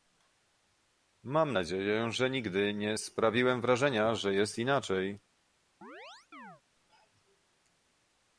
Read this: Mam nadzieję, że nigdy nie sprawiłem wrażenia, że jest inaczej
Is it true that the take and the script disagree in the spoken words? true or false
false